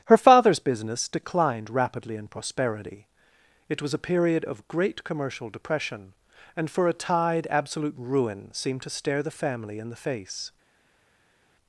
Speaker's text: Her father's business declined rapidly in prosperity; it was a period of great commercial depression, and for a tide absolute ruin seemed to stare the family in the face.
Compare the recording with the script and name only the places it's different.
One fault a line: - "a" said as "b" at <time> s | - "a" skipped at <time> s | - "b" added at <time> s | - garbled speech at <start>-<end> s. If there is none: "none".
none